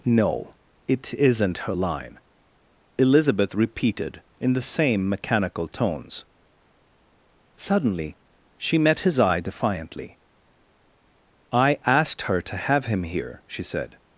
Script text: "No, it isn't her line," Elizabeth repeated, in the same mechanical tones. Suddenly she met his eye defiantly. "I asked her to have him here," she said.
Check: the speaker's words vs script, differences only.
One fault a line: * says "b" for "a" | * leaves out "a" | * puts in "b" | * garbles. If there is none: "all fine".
all fine